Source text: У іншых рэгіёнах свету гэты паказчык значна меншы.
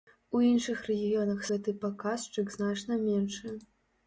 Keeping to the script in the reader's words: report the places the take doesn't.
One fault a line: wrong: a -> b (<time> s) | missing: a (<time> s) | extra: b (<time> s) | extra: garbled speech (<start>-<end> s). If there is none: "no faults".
missing: свету (1.4 s)